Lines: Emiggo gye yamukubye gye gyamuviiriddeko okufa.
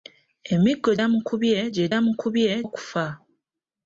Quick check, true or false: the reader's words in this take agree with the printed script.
false